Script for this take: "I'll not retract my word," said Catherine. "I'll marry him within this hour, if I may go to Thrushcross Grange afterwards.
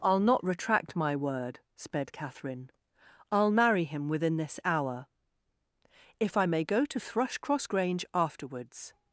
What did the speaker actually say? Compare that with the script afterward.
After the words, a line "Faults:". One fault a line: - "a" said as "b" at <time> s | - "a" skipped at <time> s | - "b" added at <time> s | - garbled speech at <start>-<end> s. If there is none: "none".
"I'll not retract my word," sped Catherine. "I'll marry him within this hour, if I may go to Thrushcross Grange afterwards.
Faults:
- "said" said as "sped" at 1.8 s